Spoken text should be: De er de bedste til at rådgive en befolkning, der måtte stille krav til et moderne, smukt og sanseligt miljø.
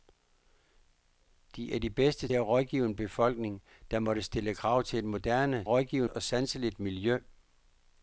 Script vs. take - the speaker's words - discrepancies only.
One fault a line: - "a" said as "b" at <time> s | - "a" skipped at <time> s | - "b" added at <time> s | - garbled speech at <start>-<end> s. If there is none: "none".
- "til" skipped at 2.3 s
- "smukt" said as "rådgive" at 5.7 s